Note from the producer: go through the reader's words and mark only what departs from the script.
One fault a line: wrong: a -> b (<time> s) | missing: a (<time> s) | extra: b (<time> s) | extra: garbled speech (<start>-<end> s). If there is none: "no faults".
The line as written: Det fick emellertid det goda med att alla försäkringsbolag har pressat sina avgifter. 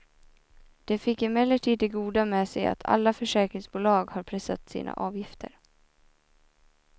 extra: sig (2.5 s)